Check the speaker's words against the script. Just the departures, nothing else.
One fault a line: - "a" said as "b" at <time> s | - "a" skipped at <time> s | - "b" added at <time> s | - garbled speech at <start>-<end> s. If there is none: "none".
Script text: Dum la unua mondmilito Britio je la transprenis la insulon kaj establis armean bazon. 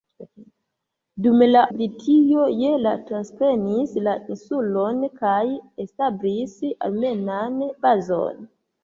- "unua mondmilito" skipped at 1.6 s